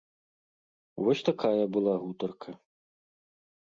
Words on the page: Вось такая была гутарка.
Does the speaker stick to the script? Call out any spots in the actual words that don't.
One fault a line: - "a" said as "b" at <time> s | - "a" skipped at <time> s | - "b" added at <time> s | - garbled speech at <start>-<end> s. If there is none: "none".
none